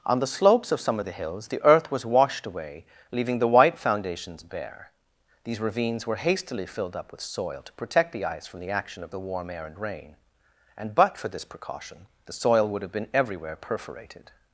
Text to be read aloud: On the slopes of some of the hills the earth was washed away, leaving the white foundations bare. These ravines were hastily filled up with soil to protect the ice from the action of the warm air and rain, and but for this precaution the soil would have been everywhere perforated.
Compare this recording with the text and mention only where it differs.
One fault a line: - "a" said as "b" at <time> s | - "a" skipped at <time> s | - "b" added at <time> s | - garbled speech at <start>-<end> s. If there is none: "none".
none